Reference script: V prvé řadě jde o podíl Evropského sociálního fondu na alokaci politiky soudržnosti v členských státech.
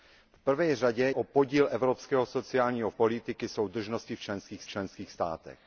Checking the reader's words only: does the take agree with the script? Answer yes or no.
no